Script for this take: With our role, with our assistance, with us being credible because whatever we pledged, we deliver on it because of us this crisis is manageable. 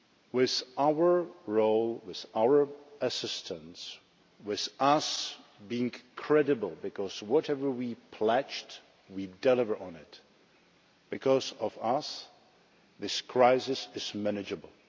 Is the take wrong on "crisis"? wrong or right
right